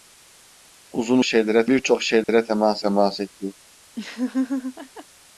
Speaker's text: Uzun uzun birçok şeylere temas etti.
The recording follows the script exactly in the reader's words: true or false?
false